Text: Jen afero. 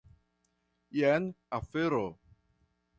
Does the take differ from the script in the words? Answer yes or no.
no